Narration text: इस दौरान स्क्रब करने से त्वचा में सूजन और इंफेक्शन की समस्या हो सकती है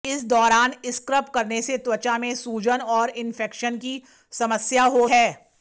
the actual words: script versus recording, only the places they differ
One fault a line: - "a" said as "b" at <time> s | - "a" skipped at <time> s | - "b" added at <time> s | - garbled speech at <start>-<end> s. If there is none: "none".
- "सकती" skipped at 5.1 s